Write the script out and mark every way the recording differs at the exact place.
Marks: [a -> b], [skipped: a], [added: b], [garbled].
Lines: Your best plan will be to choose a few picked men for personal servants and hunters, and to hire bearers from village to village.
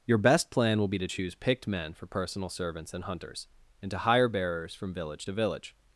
Your best plan will be to choose [skipped: a few] picked men for personal servants and hunters, and to hire bearers from village to village.